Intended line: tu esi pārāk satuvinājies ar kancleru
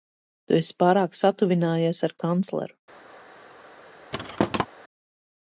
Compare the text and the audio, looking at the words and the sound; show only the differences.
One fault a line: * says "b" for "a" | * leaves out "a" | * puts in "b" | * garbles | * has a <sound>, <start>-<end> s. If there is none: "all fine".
* has a thud, 4.1-4.7 s